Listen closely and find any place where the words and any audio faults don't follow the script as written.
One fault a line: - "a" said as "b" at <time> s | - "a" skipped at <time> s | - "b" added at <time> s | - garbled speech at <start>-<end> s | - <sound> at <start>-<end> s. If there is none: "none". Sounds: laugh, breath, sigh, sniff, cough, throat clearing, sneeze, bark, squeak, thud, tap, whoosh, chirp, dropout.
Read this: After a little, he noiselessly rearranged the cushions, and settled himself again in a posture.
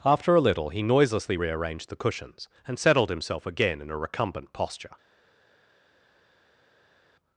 - "recumbent" added at 4.0 s